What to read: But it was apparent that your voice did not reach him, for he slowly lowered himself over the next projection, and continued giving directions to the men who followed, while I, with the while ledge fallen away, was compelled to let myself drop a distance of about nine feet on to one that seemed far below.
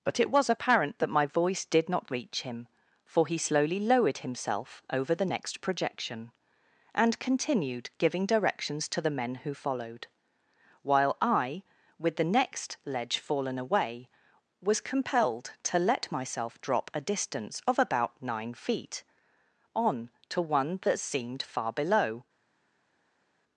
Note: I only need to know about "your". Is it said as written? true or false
false